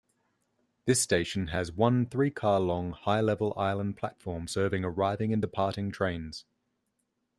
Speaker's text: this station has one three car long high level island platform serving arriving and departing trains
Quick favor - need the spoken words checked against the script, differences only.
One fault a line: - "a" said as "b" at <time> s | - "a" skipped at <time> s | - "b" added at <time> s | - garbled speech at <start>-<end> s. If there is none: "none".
none